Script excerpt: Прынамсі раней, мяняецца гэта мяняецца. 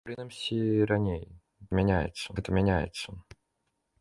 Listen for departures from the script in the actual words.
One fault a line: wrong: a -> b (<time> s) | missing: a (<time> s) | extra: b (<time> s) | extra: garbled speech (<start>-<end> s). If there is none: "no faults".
no faults